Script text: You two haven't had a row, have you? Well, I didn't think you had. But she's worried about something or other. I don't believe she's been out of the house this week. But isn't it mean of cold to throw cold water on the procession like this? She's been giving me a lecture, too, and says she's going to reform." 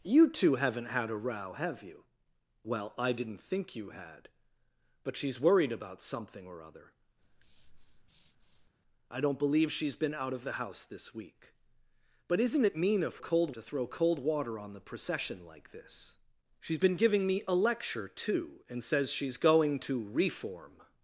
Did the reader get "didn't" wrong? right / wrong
right